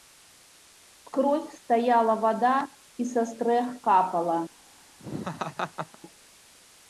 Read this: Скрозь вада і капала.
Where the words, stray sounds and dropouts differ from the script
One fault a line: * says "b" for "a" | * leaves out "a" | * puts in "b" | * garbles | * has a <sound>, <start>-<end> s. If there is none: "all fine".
* puts in "стаяла"
* puts in "са стрэх"
* has a laugh, 5.0-6.0 s